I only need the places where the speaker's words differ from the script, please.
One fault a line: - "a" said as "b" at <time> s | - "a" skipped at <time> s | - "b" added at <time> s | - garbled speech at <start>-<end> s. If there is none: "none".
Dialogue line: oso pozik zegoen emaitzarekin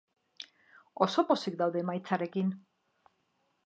- "zegoen" said as "daude" at 1.6 s